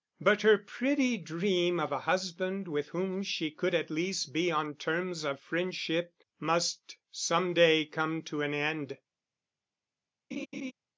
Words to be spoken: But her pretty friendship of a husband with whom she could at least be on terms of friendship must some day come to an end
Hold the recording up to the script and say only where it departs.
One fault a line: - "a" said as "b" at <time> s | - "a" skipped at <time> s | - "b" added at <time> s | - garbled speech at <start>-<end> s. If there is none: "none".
- "friendship" said as "dream" at 1.2 s